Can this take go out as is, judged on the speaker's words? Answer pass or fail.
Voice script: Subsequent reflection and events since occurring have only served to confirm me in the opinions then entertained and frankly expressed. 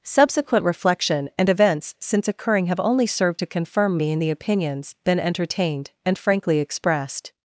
fail